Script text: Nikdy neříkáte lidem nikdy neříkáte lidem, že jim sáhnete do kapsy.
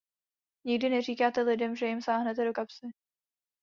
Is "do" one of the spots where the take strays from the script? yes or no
no